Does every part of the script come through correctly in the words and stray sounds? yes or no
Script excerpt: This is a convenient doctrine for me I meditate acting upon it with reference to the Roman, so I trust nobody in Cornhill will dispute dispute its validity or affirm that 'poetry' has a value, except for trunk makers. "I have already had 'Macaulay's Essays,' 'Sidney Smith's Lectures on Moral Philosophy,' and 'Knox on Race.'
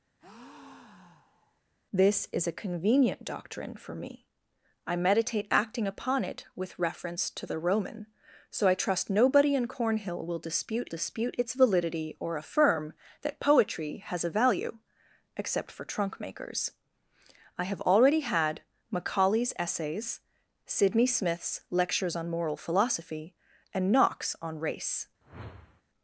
no